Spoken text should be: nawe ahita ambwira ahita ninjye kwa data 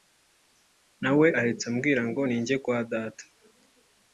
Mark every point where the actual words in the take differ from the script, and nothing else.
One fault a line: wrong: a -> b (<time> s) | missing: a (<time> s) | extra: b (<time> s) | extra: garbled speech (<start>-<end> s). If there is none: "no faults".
wrong: ahita -> ngo (2.1 s)